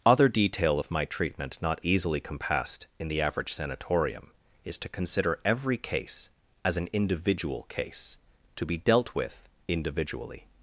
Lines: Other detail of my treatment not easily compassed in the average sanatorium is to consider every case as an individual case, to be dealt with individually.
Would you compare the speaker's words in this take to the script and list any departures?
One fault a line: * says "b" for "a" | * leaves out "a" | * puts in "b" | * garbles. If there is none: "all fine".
all fine